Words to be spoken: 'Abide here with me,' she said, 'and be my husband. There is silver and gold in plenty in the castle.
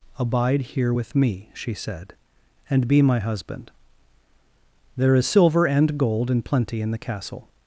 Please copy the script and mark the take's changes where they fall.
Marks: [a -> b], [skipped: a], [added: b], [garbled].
'Abide here with me,' she said, 'and be my husband. There is silver and gold in plenty in the castle.